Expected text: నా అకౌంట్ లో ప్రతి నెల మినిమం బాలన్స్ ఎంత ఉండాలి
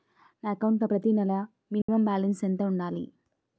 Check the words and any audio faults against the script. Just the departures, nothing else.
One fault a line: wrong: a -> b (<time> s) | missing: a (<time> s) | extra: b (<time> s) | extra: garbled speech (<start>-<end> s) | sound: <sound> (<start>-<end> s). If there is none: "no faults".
sound: dropout (1.8-1.9 s)